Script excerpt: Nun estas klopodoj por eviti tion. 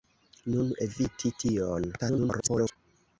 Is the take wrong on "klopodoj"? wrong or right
wrong